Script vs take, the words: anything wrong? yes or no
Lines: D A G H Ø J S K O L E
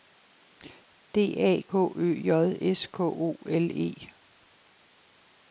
yes